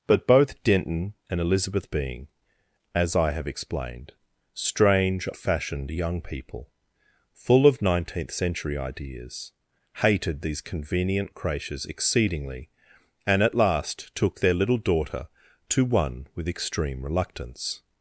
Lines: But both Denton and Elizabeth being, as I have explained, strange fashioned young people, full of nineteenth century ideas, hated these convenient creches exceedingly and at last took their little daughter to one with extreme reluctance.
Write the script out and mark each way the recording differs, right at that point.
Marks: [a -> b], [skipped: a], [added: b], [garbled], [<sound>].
But both Denton and Elizabeth being, as I have explained, strange fashioned young people, full of nineteenth century ideas, hated these convenient creches exceedingly and at last took their little daughter to one with extreme reluctance.